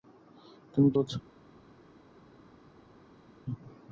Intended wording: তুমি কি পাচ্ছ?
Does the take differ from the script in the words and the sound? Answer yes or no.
no